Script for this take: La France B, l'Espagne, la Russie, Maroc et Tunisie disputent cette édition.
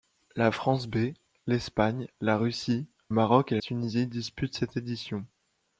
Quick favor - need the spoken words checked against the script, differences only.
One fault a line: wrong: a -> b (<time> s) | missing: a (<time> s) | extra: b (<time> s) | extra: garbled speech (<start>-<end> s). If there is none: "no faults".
no faults